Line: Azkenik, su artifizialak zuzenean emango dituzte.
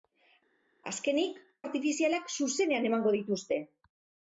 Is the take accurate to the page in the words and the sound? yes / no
no